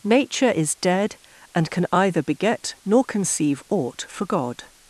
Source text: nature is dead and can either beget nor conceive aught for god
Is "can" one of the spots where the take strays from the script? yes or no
no